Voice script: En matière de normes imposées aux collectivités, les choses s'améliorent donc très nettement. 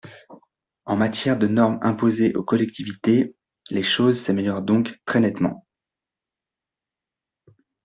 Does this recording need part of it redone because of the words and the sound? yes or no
no